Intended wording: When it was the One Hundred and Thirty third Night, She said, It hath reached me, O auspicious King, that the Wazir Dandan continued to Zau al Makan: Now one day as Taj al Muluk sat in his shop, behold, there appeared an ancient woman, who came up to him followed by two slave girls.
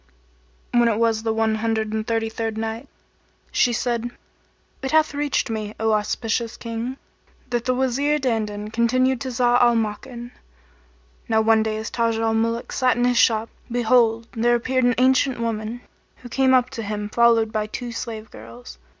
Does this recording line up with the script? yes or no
yes